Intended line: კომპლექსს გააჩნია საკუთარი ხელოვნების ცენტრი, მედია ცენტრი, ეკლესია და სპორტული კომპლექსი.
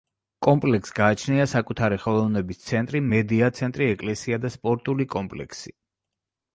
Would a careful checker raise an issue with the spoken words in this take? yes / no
no